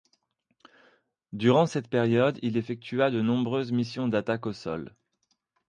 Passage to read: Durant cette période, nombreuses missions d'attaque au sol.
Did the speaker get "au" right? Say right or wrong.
right